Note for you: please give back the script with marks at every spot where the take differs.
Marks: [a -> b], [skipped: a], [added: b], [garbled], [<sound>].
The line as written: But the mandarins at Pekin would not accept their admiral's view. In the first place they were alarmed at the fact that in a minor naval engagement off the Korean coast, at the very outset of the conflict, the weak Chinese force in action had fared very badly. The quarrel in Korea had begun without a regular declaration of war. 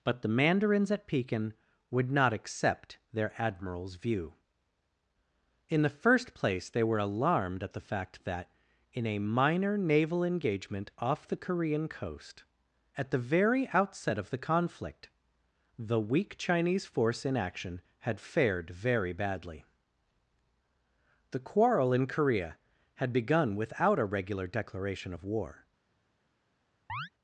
But the mandarins at Pekin would not accept their admiral's view. In the first place they were alarmed at the fact that in a minor naval engagement off the Korean coast, at the very outset of the conflict, the weak Chinese force in action had fared very badly. The quarrel in Korea had begun without a regular declaration of war. [chirp]